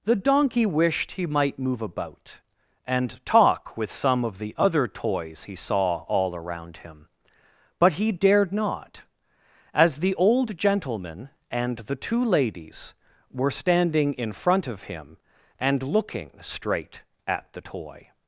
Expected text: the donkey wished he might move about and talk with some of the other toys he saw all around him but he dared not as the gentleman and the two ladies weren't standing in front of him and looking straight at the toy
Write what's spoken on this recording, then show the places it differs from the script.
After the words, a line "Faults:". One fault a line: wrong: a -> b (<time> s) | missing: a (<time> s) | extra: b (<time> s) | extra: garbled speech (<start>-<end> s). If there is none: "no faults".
the donkey wished he might move about and talk with some of the other toys he saw all around him but he dared not as the old gentleman and the two ladies were standing in front of him and looking straight at the toy
Faults:
extra: old (10.2 s)
wrong: weren't -> were (13.3 s)